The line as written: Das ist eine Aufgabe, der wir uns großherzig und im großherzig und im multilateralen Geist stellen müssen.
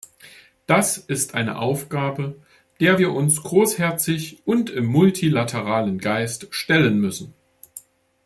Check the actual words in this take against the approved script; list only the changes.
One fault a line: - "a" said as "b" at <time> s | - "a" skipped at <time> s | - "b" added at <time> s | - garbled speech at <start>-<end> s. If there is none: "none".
- "großherzig und im" skipped at 4.9 s